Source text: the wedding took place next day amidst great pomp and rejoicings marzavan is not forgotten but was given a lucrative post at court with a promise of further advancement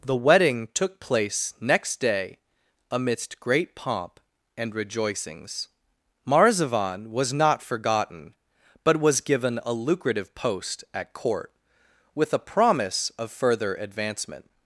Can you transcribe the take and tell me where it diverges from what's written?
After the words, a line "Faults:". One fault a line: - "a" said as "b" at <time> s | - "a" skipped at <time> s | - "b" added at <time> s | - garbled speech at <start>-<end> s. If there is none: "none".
the wedding took place next day amidst great pomp and rejoicings marzavan was not forgotten but was given a lucrative post at court with a promise of further advancement
Faults:
- "is" said as "was" at 7.1 s